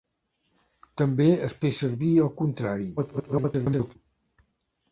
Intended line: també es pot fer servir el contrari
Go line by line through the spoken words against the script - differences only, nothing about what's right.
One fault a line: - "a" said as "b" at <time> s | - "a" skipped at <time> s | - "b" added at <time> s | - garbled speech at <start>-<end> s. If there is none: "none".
- "pot" skipped at 1.6 s
- garbled speech at 3.0-4.0 s